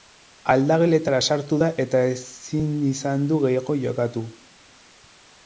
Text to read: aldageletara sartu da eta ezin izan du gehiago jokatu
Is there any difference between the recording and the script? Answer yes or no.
no